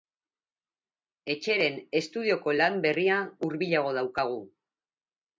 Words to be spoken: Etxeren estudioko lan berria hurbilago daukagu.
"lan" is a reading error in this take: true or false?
false